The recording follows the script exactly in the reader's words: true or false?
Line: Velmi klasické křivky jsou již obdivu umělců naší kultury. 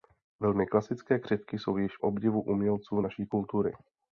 true